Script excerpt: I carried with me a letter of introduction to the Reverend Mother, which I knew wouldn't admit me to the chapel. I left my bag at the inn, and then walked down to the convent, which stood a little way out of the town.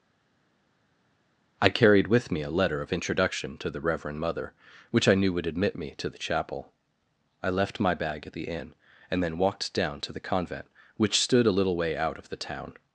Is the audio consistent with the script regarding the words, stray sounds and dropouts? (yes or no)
no